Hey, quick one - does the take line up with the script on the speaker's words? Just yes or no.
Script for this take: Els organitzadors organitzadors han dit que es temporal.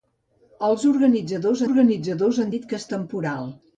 yes